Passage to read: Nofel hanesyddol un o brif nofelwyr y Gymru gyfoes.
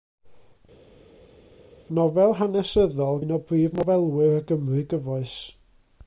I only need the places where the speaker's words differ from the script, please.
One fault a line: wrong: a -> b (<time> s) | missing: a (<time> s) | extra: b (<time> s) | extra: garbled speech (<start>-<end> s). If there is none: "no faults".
no faults